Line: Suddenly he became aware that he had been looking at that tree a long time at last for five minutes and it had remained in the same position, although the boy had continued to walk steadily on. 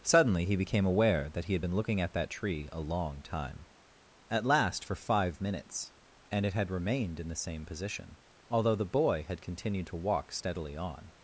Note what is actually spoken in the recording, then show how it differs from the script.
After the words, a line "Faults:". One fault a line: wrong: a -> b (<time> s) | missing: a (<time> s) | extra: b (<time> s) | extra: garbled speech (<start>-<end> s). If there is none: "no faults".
Suddenly he became aware that he had been looking at that tree a long time at last for five minutes and it had remained in the same position, although the boy had continued to walk steadily on.
Faults:
no faults